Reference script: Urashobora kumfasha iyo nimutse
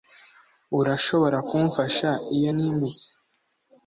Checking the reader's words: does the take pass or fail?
pass